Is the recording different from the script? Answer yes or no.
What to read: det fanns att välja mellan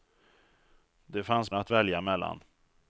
no